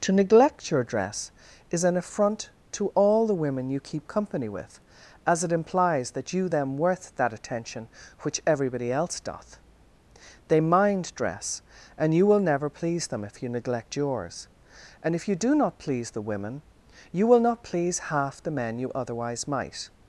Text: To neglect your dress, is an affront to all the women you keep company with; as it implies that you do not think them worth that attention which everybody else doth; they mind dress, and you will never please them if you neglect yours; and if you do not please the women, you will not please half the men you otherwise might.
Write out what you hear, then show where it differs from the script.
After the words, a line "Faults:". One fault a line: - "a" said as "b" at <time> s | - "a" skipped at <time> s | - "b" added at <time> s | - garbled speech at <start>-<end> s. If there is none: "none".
To neglect your dress, is an affront to all the women you keep company with; as it implies that you them worth that attention which everybody else doth; they mind dress, and you will never please them if you neglect yours; and if you do not please the women, you will not please half the men you otherwise might.
Faults:
- "do not think" skipped at 6.5 s